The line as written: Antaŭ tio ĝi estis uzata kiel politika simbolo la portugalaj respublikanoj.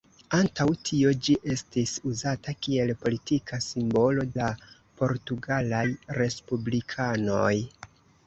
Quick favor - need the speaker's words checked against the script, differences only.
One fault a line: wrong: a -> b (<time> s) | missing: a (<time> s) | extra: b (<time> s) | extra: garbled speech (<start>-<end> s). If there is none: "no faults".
no faults